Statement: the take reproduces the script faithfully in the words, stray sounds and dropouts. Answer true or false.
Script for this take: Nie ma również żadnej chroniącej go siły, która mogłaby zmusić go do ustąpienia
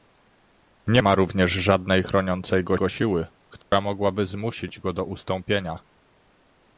false